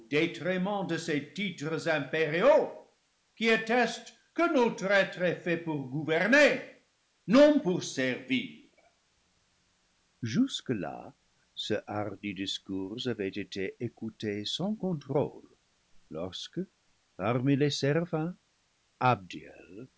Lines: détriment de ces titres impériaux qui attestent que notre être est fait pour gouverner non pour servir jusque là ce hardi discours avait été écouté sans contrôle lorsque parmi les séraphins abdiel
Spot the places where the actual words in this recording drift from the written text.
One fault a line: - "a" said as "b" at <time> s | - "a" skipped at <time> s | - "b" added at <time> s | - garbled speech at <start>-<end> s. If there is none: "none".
none